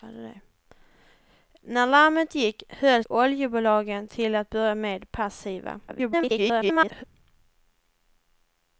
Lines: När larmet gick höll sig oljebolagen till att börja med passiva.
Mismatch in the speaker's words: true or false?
true